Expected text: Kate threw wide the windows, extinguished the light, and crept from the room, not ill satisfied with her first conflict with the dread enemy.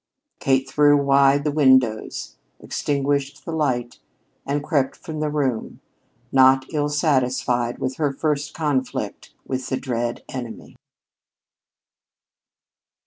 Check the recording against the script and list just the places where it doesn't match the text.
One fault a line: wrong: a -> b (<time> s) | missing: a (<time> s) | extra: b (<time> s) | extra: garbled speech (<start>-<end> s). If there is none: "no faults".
no faults